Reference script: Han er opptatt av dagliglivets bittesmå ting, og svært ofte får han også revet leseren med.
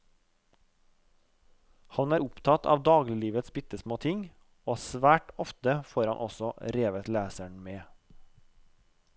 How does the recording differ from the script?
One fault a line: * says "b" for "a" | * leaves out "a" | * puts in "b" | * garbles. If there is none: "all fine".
all fine